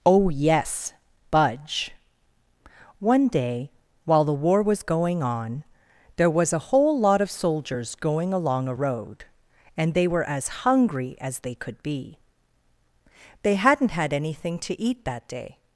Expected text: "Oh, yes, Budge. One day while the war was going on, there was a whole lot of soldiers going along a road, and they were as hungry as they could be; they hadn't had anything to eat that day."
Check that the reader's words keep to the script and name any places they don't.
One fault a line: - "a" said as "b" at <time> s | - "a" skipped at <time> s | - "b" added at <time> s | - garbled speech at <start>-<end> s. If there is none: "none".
none